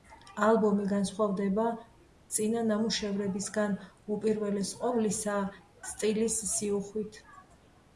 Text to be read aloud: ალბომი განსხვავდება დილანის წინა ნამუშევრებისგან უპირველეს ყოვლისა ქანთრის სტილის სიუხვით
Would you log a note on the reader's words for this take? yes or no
yes